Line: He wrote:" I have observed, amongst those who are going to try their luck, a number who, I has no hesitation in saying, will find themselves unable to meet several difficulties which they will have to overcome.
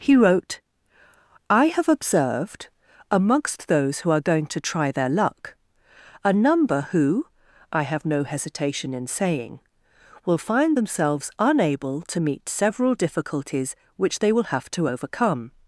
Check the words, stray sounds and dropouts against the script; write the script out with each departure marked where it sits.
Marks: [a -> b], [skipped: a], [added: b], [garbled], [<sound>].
He wrote:" I have observed, amongst those who are going to try their luck, a number who, I [has -> have] no hesitation in saying, will find themselves unable to meet several difficulties which they will have to overcome.